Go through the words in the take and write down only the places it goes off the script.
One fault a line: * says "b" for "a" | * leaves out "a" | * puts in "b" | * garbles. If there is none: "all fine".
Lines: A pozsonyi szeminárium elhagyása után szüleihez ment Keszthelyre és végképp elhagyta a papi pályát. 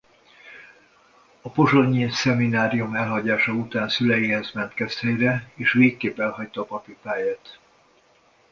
all fine